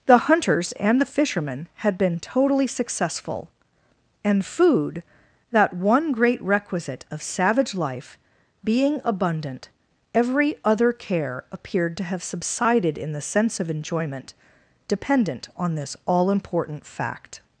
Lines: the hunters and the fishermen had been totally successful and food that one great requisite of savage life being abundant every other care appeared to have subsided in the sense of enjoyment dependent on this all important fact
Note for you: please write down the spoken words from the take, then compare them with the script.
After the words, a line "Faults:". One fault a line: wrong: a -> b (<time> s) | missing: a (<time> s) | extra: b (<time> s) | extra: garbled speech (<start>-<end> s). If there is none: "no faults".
the hunters and the fishermen had been totally successful and food that one great requisite of savage life being abundant every other care appeared to have subsided in the sense of enjoyment dependent on this all important fact
Faults:
no faults